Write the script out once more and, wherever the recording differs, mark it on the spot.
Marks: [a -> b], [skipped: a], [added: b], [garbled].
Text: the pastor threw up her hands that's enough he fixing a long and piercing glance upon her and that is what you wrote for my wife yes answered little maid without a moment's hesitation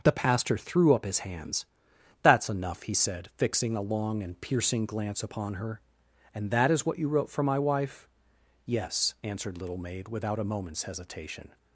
the pastor threw up [her -> his] hands that's enough he [added: said] fixing a long and piercing glance upon her and that is what you wrote for my wife yes answered little maid without a moment's hesitation